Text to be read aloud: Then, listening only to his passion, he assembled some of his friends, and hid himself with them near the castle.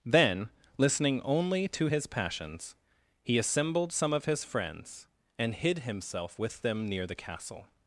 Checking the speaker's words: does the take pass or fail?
fail